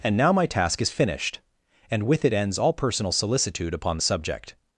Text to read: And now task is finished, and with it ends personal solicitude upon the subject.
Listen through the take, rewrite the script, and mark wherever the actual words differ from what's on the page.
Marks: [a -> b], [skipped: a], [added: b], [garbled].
And now [added: my] task is finished, and with it ends [added: all] personal solicitude upon the subject.